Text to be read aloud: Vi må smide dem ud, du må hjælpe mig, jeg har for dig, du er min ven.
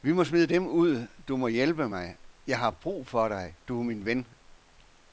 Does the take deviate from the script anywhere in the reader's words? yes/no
yes